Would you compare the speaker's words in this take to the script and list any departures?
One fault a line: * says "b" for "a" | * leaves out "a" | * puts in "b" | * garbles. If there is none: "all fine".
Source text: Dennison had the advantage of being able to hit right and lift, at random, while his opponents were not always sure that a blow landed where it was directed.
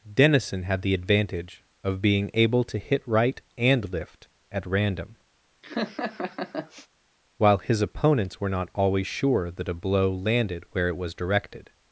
all fine